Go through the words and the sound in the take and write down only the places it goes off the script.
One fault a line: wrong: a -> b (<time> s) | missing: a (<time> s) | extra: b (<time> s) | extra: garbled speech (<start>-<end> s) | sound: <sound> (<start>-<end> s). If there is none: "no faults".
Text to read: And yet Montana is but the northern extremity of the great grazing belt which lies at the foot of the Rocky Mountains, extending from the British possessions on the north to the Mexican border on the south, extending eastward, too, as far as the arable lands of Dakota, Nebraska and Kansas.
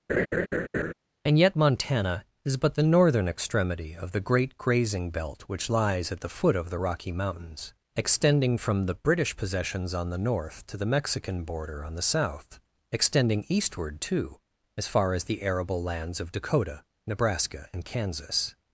sound: laugh (0.1-0.9 s)